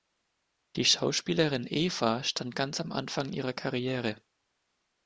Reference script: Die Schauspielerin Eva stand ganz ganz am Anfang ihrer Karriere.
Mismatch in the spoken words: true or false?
true